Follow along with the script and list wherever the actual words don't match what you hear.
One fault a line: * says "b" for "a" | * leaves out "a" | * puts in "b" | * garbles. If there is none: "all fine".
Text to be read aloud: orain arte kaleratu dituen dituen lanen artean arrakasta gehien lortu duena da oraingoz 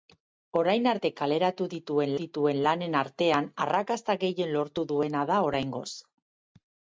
all fine